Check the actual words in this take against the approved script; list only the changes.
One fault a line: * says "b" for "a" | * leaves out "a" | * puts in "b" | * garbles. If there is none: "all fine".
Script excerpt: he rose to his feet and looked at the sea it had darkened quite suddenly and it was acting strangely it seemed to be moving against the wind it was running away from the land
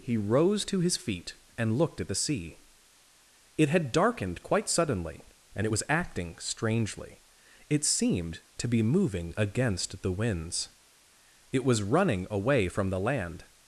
* says "winds" for "wind"